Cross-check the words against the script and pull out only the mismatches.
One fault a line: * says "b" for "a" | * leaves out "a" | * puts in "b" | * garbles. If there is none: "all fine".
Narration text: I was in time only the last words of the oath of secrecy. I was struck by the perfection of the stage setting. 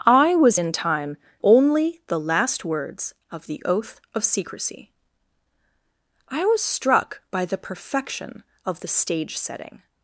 all fine